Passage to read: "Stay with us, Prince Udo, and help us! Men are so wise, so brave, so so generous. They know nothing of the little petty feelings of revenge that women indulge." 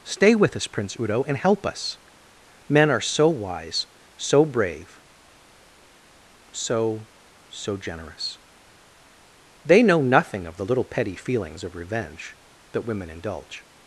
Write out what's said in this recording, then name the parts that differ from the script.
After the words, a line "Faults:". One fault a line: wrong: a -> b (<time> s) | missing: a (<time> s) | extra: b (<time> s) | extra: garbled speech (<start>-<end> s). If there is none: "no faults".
"Stay with us, Prince Udo, and help us! Men are so wise, so brave, so so generous. They know nothing of the little petty feelings of revenge that women indulge."
Faults:
no faults